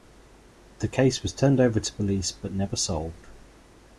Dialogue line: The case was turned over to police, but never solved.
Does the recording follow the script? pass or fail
pass